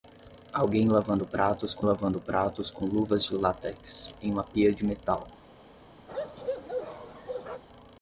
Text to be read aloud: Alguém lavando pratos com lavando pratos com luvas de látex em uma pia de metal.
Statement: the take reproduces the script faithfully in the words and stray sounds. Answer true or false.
false